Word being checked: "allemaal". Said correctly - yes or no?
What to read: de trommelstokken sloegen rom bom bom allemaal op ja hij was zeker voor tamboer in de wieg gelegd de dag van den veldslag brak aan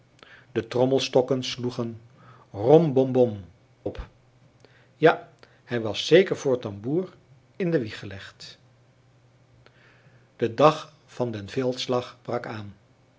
no